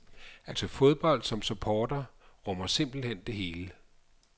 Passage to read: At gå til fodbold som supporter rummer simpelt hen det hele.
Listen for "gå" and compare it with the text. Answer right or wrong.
wrong